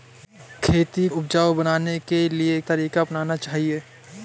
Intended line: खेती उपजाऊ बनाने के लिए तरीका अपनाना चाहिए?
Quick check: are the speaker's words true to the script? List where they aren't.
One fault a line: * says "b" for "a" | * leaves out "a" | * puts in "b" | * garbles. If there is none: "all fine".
all fine